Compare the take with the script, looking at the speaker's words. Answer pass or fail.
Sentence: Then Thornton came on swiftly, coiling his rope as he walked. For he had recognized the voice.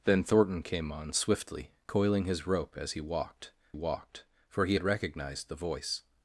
fail